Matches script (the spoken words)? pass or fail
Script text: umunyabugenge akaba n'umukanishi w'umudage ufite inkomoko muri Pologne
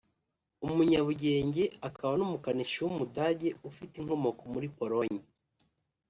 pass